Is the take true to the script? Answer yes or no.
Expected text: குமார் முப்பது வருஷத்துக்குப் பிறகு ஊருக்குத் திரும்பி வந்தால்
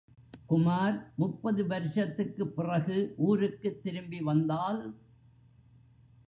yes